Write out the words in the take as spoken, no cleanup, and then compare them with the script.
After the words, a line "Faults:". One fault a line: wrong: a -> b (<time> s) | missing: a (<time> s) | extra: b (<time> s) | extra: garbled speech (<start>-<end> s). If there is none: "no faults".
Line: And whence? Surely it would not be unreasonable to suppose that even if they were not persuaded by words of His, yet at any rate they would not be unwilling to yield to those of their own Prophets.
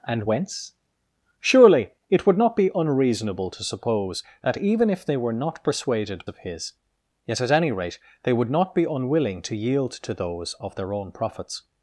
And whence? Surely it would not be unreasonable to suppose that even if they were not persuaded of His, yet at any rate they would not be unwilling to yield to those of their own Prophets.
Faults:
missing: by words (6.3 s)